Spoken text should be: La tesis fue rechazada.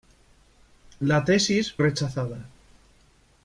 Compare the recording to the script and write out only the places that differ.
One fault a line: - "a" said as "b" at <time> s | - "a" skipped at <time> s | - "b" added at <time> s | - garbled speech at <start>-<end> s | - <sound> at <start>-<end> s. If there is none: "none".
- "fue" skipped at 1.8 s